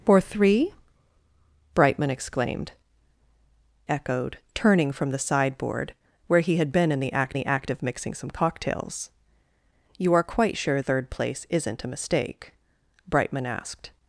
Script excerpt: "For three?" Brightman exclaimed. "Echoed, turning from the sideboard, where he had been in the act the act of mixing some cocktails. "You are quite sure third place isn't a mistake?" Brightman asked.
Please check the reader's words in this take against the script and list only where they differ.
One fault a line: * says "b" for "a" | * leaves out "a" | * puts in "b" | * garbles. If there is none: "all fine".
all fine